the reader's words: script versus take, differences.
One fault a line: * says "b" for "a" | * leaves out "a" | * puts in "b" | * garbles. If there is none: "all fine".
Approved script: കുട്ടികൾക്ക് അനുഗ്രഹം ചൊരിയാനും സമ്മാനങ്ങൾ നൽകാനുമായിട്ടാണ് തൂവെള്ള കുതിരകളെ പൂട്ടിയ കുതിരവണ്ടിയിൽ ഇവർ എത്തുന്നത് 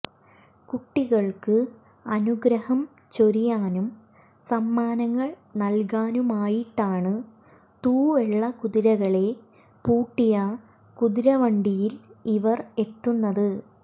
all fine